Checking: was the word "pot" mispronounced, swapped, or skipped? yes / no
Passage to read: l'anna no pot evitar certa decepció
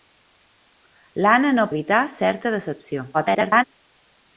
yes